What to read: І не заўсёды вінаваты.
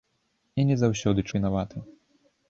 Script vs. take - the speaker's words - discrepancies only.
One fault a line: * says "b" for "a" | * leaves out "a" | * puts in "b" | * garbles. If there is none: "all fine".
all fine